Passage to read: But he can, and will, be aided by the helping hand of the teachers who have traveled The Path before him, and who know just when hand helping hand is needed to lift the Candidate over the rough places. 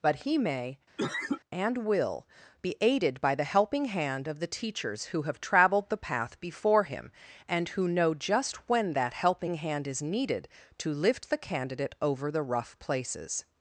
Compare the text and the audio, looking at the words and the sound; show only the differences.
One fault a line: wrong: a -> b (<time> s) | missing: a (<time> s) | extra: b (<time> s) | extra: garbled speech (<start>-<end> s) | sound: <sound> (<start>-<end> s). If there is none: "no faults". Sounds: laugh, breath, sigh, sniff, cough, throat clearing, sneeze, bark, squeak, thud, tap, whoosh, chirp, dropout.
wrong: can -> may (0.4 s)
sound: cough (1.0-1.4 s)
wrong: hand -> that (8.9 s)